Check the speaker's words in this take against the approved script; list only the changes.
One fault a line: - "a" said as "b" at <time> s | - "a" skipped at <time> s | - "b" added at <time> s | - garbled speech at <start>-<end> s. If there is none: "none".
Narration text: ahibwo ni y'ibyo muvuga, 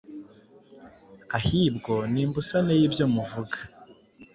- "imbusane" added at 2.2 s